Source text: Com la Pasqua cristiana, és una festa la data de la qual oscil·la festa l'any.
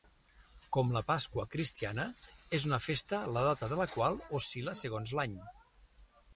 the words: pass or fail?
fail